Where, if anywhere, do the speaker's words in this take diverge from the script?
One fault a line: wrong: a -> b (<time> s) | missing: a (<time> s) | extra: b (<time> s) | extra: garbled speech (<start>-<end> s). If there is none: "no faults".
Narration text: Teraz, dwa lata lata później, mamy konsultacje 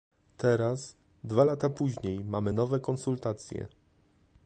missing: lata (1.7 s)
extra: nowe (2.5 s)